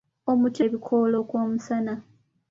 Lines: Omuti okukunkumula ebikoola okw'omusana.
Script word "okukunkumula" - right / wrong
wrong